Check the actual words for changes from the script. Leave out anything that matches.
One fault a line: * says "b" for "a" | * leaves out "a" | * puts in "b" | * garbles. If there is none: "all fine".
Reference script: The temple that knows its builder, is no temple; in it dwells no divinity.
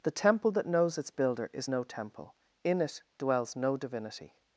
all fine